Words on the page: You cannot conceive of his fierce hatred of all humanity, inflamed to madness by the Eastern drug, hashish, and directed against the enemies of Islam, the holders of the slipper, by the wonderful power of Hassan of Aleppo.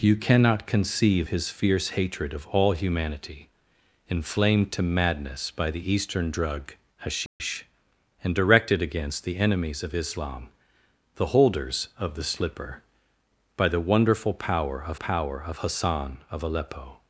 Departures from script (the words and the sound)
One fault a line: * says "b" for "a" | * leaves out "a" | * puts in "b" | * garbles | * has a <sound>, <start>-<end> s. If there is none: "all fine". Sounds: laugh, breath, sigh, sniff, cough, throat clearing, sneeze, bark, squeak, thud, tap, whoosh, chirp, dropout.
* leaves out "of"
* has a dropout, 7.3-7.4 s
* puts in "power of"